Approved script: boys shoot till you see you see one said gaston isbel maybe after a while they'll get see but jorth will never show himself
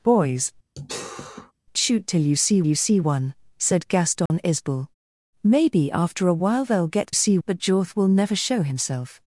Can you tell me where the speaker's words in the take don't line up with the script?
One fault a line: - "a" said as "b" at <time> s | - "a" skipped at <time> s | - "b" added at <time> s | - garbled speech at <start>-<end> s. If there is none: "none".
none